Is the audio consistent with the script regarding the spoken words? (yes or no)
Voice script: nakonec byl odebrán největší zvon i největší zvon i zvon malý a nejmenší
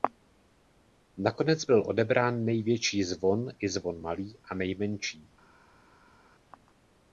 no